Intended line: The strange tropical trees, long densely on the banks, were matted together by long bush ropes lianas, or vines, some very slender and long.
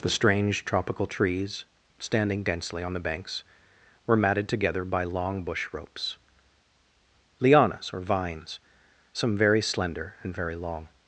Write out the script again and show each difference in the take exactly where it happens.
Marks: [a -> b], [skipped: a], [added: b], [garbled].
The strange tropical trees, [long -> standing] densely on the banks, were matted together by long bush ropes lianas, or vines, some very slender and [added: very] long.